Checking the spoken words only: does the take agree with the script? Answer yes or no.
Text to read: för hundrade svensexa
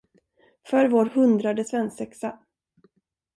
no